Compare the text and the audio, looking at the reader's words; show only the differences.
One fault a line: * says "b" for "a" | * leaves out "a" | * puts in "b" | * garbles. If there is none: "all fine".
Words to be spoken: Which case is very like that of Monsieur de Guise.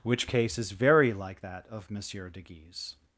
all fine